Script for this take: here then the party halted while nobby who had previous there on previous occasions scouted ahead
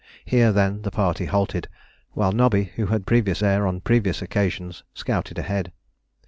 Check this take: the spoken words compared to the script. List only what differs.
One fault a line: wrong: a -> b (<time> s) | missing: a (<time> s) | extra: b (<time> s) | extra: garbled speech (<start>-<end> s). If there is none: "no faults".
no faults